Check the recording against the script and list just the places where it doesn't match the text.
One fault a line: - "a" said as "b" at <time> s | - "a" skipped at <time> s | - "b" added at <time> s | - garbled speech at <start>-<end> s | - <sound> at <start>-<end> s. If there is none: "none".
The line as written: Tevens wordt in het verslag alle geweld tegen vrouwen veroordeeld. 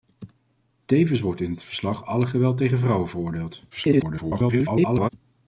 - garbled speech at 3.7-5.1 s